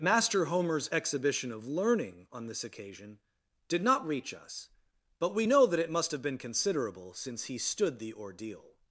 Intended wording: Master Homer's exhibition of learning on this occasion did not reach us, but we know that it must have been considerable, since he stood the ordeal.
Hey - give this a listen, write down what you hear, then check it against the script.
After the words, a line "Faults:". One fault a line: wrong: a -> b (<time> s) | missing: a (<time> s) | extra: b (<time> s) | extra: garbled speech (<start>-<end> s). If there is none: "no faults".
Master Homer's exhibition of learning on this occasion did not reach us, but we know that it must have been considerable, since he stood the ordeal.
Faults:
no faults